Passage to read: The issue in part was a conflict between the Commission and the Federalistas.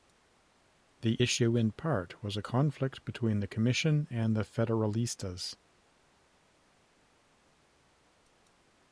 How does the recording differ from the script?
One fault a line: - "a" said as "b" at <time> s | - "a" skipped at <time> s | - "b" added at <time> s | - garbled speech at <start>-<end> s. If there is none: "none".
none